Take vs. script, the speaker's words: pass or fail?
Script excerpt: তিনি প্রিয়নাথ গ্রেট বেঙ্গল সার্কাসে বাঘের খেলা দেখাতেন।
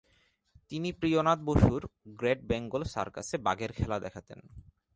fail